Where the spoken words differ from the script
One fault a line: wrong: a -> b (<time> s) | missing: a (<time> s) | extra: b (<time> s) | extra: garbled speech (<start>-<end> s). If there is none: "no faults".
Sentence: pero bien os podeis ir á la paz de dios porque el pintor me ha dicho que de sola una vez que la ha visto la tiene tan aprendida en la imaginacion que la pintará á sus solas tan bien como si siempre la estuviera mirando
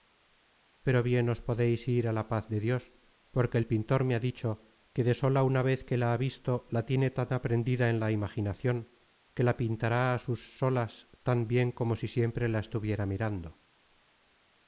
no faults